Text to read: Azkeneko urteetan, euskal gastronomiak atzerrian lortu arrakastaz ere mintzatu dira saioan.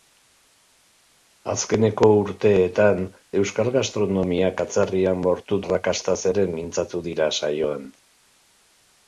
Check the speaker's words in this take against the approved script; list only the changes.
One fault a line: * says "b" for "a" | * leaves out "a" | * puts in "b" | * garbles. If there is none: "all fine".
all fine